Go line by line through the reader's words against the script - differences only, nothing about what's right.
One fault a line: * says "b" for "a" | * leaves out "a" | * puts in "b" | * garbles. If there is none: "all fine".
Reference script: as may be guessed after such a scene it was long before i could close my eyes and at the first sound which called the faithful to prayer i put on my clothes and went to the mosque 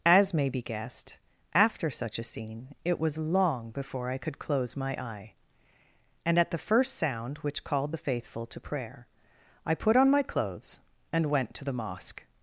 * says "eye" for "eyes"